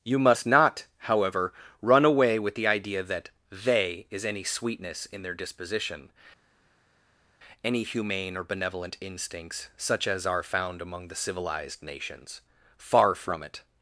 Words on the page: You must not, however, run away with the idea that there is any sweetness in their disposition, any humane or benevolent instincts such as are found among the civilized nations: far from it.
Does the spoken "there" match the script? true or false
false